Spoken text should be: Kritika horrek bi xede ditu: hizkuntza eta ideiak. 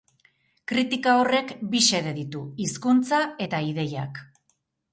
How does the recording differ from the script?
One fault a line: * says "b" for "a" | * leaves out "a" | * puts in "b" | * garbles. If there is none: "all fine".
all fine